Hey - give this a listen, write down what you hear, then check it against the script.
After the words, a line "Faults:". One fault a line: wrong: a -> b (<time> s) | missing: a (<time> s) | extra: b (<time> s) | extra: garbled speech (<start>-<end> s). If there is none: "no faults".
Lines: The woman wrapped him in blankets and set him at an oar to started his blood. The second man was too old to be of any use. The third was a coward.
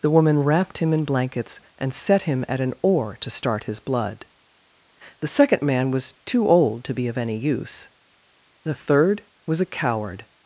The woman wrapped him in blankets and set him at an oar to start his blood. The second man was too old to be of any use. The third was a coward.
Faults:
wrong: started -> start (3.3 s)